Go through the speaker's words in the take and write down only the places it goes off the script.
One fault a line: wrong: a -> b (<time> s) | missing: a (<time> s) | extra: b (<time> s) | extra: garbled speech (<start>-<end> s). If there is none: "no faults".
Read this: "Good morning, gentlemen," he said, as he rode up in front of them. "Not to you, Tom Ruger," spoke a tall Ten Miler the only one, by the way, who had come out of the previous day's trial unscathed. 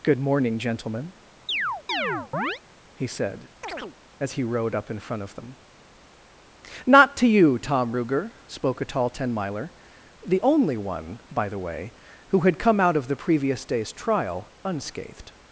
no faults